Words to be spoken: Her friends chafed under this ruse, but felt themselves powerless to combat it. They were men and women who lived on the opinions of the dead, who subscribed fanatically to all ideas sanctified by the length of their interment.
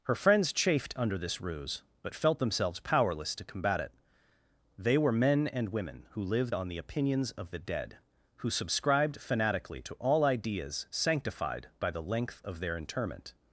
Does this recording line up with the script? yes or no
yes